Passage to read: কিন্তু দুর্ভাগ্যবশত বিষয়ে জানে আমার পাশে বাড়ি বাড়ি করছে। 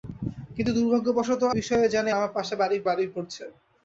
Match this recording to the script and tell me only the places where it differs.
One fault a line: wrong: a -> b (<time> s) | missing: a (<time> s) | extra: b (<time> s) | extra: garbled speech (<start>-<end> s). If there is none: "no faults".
no faults